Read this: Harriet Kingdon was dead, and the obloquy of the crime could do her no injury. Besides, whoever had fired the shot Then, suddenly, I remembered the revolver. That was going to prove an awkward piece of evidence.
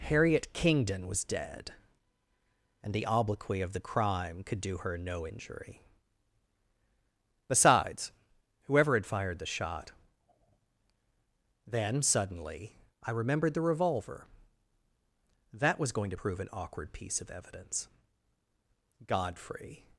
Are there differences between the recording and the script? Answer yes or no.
yes